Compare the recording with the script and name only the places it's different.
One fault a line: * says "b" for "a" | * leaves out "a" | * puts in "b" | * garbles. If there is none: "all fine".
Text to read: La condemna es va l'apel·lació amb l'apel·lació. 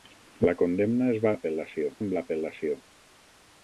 all fine